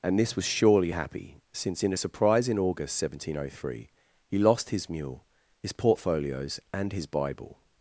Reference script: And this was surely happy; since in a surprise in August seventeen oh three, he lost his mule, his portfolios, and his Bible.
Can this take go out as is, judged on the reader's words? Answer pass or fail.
pass